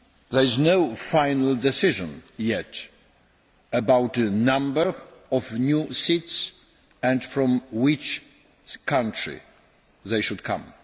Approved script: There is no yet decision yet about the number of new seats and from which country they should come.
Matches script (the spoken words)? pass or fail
fail